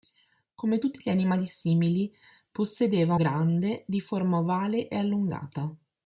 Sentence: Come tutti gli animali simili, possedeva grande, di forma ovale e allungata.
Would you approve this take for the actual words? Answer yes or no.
yes